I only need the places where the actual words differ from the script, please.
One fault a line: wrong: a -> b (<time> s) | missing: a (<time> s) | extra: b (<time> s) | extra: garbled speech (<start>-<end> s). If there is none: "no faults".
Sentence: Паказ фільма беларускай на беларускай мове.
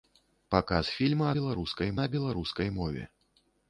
no faults